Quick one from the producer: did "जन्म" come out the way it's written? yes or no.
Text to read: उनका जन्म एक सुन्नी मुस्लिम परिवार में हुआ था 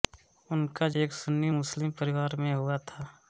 no